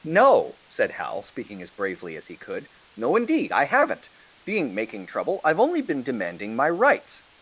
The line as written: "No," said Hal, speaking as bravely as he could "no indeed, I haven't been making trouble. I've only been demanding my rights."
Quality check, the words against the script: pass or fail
fail